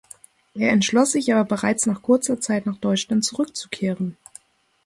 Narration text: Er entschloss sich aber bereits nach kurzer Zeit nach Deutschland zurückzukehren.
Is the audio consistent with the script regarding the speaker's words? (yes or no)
yes